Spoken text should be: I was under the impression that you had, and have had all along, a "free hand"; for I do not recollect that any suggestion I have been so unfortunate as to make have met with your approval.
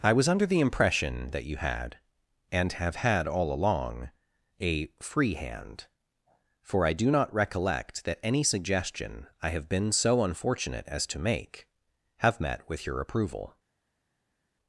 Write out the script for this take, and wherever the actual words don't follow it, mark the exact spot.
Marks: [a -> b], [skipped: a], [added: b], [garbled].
I was under the impression that you had, and have had all along, a "free hand"; for I do not recollect that any suggestion I have been so unfortunate as to make have met with your approval.